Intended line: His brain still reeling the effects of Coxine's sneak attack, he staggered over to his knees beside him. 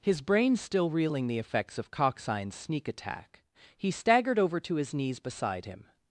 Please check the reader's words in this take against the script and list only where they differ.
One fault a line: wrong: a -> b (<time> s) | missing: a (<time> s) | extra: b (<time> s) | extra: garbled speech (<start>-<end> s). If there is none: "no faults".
no faults